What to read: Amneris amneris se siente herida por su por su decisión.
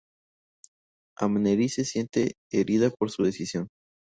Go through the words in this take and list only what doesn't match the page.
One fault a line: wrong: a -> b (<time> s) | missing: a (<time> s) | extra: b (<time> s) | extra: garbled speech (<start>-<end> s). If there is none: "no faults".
missing: amneris (1.8 s)
missing: por su (3.3 s)